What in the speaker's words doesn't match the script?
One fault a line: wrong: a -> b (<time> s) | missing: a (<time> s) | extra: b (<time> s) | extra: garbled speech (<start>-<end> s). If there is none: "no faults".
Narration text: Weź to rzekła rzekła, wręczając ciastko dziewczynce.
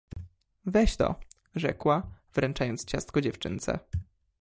missing: rzekła (2.2 s)